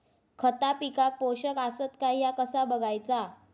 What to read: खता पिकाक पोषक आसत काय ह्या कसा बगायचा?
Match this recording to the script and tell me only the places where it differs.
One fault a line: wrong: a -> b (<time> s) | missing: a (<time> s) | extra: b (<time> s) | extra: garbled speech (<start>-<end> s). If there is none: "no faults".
no faults